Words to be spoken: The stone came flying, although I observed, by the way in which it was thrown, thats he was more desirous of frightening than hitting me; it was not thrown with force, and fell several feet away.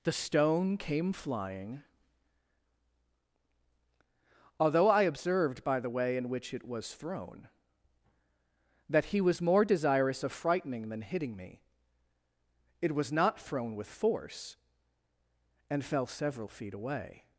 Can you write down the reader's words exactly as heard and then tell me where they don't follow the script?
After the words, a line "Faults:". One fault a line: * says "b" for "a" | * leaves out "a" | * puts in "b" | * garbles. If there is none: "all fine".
The stone came flying, although I observed, by the way in which it was thrown, that he was more desirous of frightening than hitting me; it was not thrown with force, and fell several feet away.
Faults:
* says "that" for "thats"